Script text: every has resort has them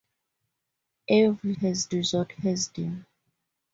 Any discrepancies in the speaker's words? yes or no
no